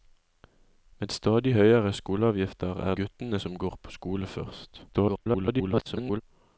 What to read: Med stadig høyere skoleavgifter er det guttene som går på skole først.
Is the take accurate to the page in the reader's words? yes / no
no